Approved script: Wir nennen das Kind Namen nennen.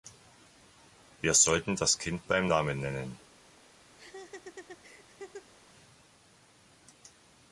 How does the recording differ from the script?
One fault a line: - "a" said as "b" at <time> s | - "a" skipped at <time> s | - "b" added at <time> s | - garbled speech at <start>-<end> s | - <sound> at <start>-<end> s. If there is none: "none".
- "nennen" said as "sollten" at 1.4 s
- "beim" added at 2.3 s
- laugh at 4.0-5.5 s